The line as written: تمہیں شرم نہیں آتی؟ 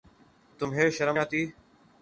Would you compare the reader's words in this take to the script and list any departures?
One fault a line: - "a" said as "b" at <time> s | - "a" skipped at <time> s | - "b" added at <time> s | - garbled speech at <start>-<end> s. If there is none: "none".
- "نہیں" skipped at 1.2 s